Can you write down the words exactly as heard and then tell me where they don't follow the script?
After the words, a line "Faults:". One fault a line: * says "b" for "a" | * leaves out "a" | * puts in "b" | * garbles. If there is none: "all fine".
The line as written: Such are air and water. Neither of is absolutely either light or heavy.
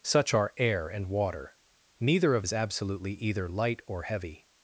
Such are air and water. Neither of is absolutely either light or heavy.
Faults:
all fine